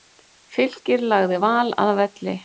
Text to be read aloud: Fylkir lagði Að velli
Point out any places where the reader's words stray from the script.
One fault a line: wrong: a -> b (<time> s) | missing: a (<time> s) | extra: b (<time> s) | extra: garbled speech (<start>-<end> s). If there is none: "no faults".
extra: Val (1.5 s)